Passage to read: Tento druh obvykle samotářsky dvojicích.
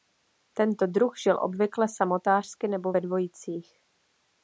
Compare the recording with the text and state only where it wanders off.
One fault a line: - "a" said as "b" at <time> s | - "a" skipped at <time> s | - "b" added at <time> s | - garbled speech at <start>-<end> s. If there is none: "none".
- "žil" added at 1.2 s
- "nebo ve" added at 2.7 s